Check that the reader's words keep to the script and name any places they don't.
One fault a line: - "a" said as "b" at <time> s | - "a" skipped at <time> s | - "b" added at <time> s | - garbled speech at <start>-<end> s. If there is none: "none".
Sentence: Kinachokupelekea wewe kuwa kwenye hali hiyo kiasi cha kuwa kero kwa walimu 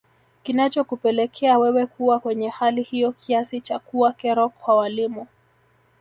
none